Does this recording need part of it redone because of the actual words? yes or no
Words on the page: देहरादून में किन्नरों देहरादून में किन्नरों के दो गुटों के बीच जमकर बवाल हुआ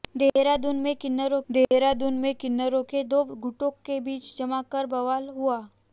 no